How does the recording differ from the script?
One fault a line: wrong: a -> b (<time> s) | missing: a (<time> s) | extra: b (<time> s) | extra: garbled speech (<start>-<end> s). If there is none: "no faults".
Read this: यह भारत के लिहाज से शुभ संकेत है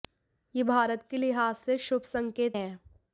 no faults